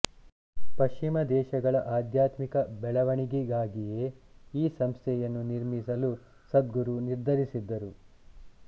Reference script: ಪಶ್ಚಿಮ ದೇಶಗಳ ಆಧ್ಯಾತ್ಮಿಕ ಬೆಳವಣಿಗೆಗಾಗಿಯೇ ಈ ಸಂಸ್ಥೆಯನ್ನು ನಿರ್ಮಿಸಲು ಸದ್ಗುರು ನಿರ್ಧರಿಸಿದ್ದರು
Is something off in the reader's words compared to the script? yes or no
no